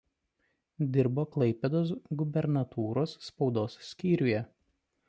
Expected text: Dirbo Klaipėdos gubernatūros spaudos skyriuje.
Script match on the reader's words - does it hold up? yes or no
yes